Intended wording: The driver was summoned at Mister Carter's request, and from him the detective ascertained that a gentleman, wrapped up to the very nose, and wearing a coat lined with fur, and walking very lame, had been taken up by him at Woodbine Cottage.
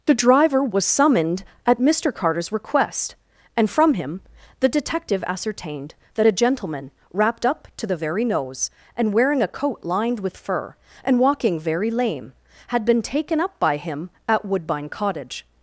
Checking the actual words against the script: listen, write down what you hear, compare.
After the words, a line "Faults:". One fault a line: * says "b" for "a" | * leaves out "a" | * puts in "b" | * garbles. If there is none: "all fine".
The driver was summoned at Mister Carter's request, and from him the detective ascertained that a gentleman, wrapped up to the very nose, and wearing a coat lined with fur, and walking very lame, had been taken up by him at Woodbine Cottage.
Faults:
all fine